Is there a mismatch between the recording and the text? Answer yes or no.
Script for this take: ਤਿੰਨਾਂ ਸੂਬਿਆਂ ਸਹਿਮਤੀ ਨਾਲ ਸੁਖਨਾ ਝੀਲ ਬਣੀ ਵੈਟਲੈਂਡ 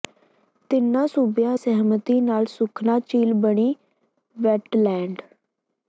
no